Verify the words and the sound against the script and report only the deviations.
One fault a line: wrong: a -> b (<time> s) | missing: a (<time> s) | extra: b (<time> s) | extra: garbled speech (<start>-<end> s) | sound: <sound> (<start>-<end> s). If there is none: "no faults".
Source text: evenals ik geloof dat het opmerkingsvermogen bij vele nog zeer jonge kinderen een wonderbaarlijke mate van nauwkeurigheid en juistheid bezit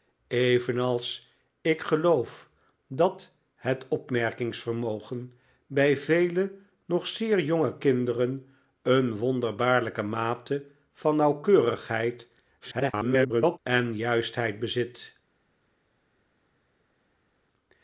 extra: garbled speech (12.6-13.6 s)